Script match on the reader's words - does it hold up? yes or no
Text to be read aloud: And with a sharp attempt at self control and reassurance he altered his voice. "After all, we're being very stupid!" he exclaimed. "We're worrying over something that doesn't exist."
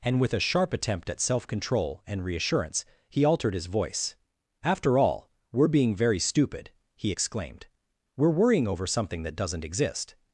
yes